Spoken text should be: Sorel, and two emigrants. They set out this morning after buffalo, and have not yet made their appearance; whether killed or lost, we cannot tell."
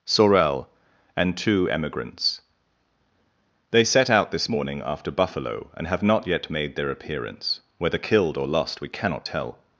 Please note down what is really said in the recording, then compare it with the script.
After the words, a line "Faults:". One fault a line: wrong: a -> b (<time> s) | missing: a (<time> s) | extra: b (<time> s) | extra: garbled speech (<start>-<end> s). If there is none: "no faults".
Sorel, and two emigrants. They set out this morning after buffalo, and have not yet made their appearance; whether killed or lost, we cannot tell."
Faults:
no faults